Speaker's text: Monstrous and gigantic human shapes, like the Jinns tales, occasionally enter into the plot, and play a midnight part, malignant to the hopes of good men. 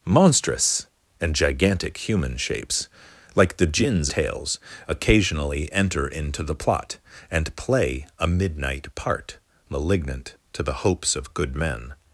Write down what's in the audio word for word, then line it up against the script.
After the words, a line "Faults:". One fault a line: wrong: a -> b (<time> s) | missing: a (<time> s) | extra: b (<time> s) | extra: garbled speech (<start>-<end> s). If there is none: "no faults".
Monstrous and gigantic human shapes, like the Jinns tales, occasionally enter into the plot, and play a midnight part, malignant to the hopes of good men.
Faults:
no faults